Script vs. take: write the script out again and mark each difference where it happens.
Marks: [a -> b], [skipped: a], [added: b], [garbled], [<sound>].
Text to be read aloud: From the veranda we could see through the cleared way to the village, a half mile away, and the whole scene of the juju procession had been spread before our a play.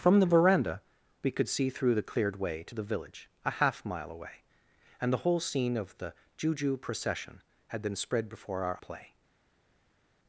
From the veranda we could see through the cleared way to the village, a half mile away, and the whole scene of the juju procession had been spread before our a play.